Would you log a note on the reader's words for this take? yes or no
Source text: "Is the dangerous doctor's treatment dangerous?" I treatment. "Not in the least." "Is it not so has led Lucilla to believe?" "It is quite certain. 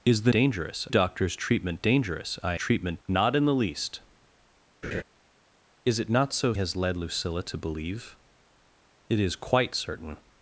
no